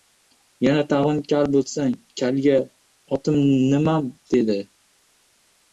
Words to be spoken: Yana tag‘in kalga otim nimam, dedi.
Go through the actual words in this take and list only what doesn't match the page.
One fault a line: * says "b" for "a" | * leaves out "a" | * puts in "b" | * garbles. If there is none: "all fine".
* puts in "kal bo‘lsang"